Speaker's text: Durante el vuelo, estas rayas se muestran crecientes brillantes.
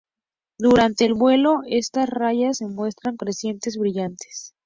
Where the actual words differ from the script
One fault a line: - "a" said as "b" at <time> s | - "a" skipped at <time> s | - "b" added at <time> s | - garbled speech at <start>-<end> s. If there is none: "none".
none